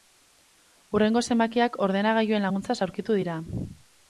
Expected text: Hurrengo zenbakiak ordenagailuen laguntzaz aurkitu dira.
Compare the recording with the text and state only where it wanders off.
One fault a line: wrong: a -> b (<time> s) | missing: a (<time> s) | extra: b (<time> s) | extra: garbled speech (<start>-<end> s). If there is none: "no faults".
no faults